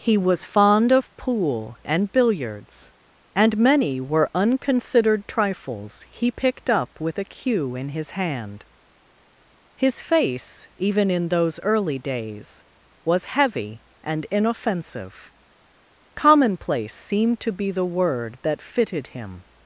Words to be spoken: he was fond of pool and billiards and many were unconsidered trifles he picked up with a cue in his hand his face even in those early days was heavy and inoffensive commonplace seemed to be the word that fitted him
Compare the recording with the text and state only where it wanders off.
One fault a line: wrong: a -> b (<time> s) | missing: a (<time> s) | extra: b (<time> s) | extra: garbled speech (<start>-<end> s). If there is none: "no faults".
no faults